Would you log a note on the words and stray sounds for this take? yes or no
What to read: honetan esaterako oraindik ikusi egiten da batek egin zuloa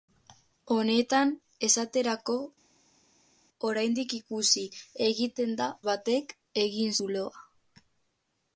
no